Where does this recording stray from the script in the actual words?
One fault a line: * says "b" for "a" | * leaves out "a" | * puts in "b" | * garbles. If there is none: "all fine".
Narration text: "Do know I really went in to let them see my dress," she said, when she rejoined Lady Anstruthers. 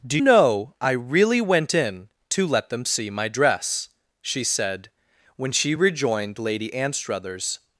all fine